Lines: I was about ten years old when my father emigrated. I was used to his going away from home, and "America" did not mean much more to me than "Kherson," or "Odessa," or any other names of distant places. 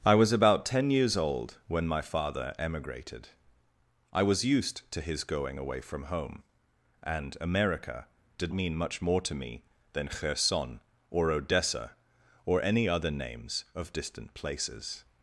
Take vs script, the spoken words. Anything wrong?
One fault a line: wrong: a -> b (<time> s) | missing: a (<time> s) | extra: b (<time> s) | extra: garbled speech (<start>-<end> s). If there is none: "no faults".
missing: not (8.5 s)